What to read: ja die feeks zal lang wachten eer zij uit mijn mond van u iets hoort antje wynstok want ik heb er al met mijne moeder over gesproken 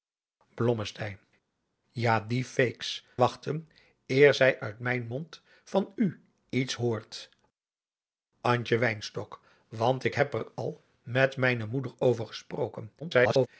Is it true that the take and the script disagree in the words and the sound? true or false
true